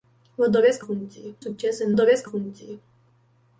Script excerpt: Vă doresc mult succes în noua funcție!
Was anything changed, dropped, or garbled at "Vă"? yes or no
no